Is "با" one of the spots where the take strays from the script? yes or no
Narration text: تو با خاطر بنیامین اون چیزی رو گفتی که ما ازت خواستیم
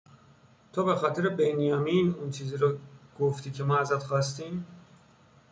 yes